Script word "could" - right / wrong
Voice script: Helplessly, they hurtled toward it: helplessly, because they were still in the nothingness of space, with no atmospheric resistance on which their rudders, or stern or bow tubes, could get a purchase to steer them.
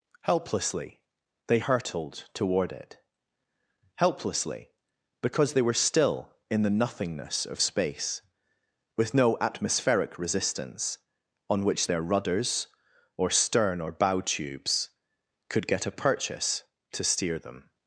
right